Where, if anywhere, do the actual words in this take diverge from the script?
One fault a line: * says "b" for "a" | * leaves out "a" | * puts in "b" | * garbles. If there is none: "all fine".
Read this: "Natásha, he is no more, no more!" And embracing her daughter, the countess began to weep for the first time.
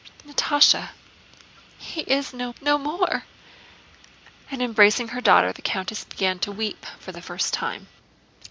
* leaves out "more"